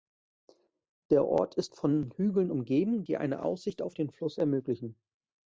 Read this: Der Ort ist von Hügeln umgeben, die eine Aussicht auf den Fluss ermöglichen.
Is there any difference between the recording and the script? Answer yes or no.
no